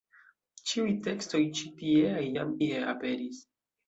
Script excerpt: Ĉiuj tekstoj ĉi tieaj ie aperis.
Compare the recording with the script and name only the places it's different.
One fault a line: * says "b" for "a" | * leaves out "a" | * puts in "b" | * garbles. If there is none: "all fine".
* puts in "jam"